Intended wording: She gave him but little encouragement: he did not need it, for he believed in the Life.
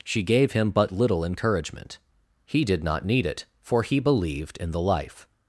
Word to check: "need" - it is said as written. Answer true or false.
true